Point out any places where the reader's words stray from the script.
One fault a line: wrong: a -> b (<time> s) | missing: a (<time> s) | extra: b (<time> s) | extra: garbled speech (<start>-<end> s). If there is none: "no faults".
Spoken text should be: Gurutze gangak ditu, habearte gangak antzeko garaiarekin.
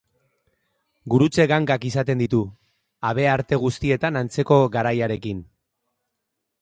extra: izaten (1.9 s)
wrong: gangak -> guztietan (3.6 s)